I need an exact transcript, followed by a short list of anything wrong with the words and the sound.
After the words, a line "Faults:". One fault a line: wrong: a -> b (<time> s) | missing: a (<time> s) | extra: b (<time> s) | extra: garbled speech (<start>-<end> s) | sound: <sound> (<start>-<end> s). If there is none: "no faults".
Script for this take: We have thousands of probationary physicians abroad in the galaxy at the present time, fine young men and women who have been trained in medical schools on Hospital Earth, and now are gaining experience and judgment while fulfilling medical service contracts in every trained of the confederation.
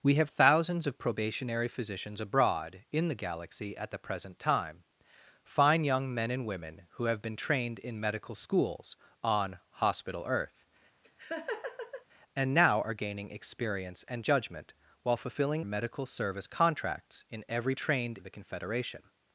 We have thousands of probationary physicians abroad in the galaxy at the present time, fine young men and women who have been trained in medical schools on Hospital Earth, and now are gaining experience and judgment while fulfilling medical service contracts in every trained of the confederation.
Faults:
sound: laugh (11.0-12.0 s)